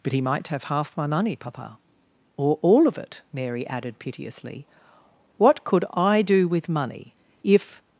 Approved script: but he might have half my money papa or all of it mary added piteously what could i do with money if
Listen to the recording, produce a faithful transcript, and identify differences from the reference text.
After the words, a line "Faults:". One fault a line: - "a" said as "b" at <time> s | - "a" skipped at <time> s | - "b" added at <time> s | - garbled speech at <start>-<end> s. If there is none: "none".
but he might have half my money papa or all of it mary added piteously what could i do with money if
Faults:
none